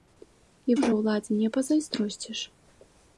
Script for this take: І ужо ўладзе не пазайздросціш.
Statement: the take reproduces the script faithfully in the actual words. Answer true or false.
true